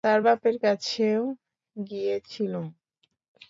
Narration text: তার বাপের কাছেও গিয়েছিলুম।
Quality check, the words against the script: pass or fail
pass